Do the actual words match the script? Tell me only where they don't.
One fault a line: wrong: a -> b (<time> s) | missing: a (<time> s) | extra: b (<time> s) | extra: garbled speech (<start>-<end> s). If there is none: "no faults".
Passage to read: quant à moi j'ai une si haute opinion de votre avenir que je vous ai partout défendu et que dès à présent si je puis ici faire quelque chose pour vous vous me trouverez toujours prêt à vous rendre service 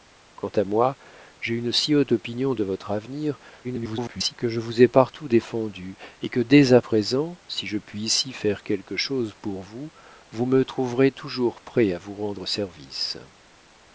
extra: garbled speech (3.6-4.3 s)